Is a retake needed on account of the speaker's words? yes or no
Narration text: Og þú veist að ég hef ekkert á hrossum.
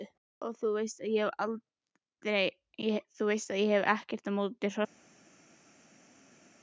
yes